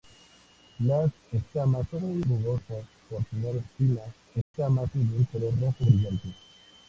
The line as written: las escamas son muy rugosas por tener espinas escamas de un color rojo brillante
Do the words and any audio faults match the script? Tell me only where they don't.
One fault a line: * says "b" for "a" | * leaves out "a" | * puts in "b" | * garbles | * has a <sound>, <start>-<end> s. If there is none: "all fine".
* has a dropout, 4.4-4.5 s